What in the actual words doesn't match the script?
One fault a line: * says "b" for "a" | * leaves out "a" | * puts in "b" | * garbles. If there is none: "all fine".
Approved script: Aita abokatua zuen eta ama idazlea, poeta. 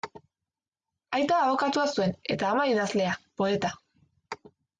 all fine